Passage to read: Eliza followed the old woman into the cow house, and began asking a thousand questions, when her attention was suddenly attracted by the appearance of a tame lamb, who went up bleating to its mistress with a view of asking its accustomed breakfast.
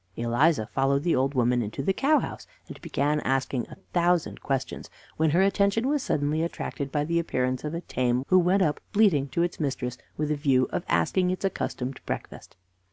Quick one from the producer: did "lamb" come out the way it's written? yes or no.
no